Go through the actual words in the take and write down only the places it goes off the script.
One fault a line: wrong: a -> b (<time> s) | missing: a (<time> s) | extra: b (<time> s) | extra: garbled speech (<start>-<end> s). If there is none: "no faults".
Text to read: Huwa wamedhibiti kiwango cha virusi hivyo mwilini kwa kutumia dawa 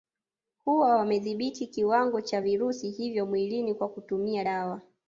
no faults